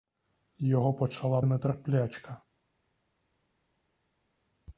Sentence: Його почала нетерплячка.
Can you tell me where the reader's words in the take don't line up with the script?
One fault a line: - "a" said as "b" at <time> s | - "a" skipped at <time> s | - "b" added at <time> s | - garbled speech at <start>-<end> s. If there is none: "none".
none